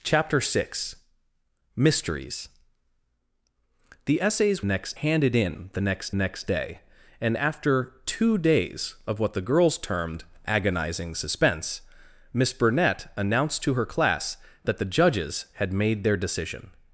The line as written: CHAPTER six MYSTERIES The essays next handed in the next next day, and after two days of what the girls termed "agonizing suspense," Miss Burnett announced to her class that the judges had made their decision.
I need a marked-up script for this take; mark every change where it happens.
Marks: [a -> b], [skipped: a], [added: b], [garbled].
CHAPTER six MYSTERIES The essays next handed in the next next day, and after two days of what the girls termed "agonizing suspense," Miss Burnett announced to her class that the judges had made their decision.